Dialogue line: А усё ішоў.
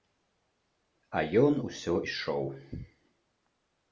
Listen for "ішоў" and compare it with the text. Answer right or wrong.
right